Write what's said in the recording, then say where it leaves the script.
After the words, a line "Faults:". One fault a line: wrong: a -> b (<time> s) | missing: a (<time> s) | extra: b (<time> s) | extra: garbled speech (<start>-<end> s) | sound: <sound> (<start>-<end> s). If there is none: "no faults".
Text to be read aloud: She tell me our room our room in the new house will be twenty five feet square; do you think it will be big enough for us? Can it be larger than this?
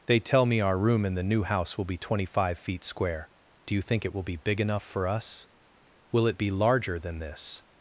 They tell me our room in the new house will be twenty five feet square; do you think it will be big enough for us? Will it be larger than this?
Faults:
wrong: She -> They (0.1 s)
missing: our room (1.1 s)
wrong: Can -> Will (6.1 s)